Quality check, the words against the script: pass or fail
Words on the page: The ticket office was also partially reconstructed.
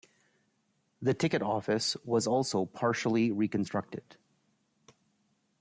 pass